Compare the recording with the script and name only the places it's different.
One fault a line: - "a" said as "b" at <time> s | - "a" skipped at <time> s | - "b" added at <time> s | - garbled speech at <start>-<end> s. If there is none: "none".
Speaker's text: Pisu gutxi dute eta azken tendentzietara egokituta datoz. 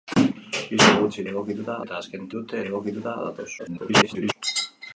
- "dute" said as "egokituta" at 1.3 s
- "tendentzietara" said as "dute" at 2.3 s
- garbled speech at 3.6-4.3 s